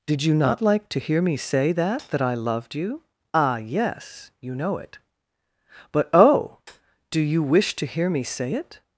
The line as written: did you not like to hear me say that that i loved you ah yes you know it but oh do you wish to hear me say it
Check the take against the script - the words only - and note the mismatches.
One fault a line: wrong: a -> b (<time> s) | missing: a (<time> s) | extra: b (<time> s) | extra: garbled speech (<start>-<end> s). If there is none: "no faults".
no faults